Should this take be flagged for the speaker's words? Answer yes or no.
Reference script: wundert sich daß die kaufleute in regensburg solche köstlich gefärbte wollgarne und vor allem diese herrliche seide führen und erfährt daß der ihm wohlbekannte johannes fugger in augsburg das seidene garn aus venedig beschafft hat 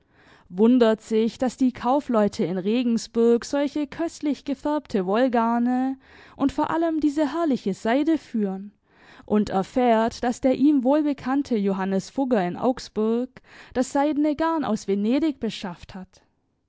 no